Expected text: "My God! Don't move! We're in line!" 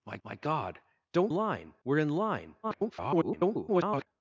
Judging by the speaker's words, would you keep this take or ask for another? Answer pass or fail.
fail